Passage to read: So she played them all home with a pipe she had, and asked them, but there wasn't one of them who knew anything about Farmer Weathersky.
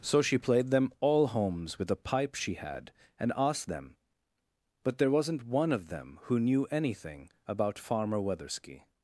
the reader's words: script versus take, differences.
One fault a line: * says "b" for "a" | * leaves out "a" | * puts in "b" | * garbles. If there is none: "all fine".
* says "homes" for "home"